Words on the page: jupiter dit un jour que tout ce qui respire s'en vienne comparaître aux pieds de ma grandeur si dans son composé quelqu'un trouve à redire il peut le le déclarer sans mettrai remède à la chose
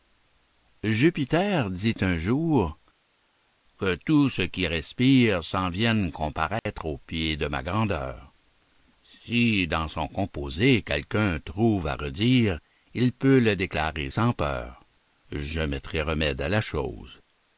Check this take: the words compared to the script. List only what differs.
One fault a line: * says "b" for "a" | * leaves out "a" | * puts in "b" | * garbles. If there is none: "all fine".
* leaves out "le"
* puts in "peur je"